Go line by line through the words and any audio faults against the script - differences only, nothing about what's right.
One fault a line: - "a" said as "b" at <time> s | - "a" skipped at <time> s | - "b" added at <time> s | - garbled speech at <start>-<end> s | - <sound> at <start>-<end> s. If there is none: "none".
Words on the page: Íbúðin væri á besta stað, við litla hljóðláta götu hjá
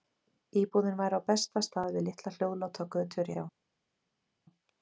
none